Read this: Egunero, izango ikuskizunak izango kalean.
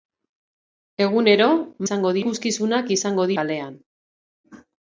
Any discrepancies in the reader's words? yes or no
no